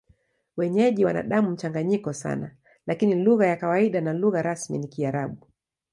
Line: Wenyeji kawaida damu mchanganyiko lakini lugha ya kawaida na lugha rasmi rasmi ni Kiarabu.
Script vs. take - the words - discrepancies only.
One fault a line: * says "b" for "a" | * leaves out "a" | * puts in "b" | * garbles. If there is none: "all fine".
* says "wana" for "kawaida"
* puts in "sana"
* leaves out "rasmi"